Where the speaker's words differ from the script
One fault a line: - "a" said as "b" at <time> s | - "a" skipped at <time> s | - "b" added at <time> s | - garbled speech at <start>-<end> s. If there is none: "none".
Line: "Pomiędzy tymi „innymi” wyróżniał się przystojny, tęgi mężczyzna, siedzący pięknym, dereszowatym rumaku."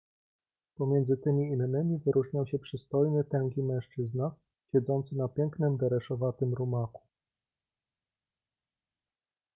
- "na" added at 5.2 s